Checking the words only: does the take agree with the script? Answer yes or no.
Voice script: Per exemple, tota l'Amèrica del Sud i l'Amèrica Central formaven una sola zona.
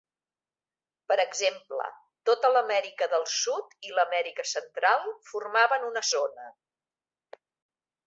no